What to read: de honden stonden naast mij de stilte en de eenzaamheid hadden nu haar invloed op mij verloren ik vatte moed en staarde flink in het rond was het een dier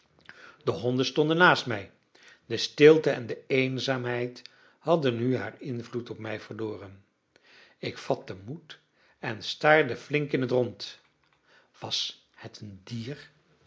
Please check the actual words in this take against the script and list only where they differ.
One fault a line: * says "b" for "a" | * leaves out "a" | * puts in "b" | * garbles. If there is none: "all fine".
all fine